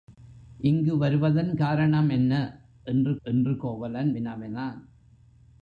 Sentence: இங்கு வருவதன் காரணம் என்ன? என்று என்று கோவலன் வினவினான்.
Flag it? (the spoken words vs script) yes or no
no